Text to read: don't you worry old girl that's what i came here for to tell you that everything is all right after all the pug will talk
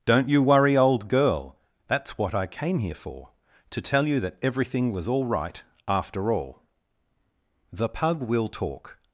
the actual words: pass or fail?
fail